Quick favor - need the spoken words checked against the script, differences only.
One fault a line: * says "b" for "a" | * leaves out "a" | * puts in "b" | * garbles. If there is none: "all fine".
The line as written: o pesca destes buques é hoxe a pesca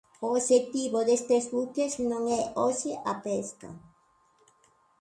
* says "obxectivo" for "pesca"
* puts in "non"